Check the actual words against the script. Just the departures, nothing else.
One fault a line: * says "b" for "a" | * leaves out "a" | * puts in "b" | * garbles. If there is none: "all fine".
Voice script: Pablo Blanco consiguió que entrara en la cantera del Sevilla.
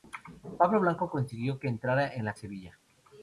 * leaves out "cantera del"